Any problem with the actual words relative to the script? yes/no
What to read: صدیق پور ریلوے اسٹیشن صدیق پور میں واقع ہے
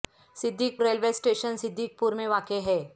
yes